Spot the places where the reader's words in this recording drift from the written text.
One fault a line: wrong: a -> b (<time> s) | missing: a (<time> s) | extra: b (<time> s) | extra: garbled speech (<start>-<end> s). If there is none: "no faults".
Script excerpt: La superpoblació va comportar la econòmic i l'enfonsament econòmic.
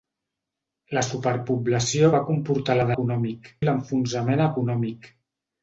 no faults